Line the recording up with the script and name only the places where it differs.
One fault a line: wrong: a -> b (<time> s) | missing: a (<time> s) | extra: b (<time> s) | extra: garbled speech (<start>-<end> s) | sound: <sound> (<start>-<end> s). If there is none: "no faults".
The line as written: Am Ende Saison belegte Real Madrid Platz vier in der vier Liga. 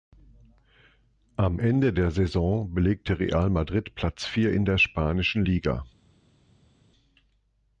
extra: der (1.9 s)
wrong: vier -> spanischen (4.8 s)